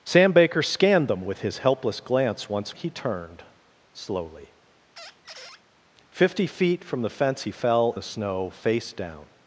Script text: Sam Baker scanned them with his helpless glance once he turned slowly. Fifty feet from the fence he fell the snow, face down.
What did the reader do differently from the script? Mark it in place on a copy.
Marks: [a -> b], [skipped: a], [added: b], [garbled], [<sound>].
Sam Baker scanned them with his helpless glance once he turned slowly. [squeak] Fifty feet from the fence he fell the snow, face down.